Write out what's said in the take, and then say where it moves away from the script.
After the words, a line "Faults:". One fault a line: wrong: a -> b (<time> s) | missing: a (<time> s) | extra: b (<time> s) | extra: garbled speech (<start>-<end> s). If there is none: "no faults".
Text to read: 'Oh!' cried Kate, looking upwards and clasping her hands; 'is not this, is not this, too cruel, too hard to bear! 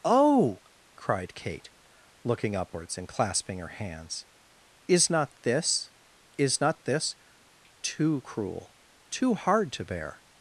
'Oh!' cried Kate, looking upwards and clasping her hands; 'is not this, is not this, too cruel, too hard to bear!
Faults:
no faults